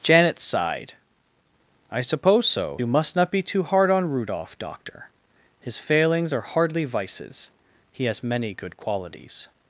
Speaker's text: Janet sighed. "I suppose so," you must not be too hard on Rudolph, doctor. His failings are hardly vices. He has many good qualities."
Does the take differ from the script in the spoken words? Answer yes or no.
no